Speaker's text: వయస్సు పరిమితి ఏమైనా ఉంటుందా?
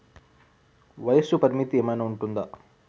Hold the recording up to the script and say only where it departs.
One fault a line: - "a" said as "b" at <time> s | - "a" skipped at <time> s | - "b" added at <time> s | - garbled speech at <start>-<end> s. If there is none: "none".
none